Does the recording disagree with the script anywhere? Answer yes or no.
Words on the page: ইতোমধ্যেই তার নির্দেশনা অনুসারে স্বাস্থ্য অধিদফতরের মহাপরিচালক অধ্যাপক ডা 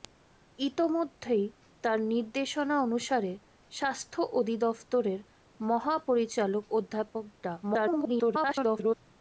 yes